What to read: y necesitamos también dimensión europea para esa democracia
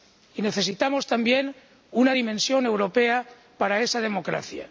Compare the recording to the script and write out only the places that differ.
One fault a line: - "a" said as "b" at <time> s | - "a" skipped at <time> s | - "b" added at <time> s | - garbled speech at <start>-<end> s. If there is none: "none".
- "una" added at 1.9 s